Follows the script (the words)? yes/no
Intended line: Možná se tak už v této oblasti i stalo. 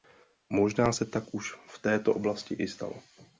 yes